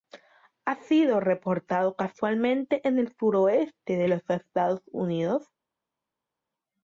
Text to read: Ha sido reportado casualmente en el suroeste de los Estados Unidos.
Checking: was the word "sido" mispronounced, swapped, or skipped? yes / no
no